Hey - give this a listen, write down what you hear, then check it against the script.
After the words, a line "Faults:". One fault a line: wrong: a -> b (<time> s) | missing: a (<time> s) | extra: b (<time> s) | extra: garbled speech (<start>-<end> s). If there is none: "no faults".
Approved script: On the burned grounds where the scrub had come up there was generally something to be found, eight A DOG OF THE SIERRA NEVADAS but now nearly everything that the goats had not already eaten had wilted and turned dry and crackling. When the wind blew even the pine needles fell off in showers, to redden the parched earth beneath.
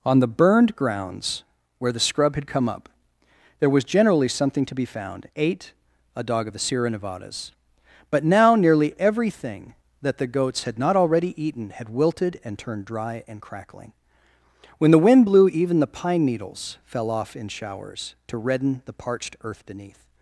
On the burned grounds where the scrub had come up there was generally something to be found, eight A DOG OF THE SIERRA NEVADAS but now nearly everything that the goats had not already eaten had wilted and turned dry and crackling. When the wind blew even the pine needles fell off in showers, to redden the parched earth beneath.
Faults:
no faults